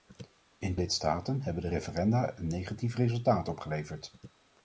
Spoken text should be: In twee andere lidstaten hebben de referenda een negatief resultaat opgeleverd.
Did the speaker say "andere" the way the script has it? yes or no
no